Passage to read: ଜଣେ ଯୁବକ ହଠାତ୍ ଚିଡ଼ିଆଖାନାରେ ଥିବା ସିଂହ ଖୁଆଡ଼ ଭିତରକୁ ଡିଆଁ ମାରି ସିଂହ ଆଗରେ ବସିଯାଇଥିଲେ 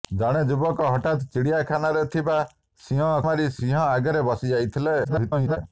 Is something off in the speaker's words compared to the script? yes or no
yes